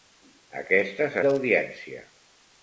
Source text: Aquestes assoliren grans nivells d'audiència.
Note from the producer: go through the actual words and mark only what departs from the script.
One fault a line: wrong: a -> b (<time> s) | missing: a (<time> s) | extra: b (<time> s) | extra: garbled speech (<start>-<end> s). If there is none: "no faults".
missing: assoliren grans nivells (1.2 s)